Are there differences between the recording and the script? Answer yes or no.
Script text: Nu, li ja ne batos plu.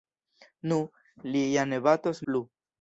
no